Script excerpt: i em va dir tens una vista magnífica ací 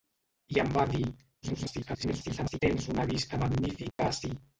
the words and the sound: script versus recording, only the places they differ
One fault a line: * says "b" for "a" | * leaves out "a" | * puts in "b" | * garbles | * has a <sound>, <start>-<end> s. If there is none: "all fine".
* garbles
* has a dropout, 3.9-4.0 s